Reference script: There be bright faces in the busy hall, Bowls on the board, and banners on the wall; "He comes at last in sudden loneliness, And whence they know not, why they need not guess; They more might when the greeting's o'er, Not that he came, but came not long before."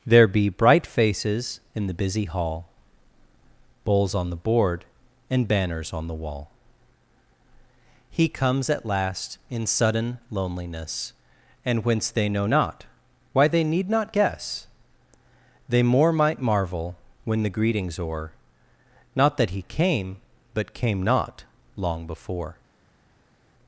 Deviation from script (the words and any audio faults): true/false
true